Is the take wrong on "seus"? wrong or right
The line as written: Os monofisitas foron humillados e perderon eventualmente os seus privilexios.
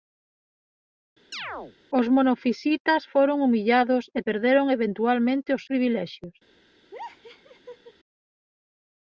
wrong